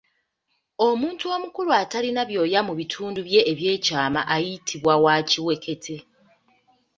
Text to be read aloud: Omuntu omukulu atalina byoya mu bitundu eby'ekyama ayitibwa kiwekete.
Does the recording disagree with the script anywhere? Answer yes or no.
yes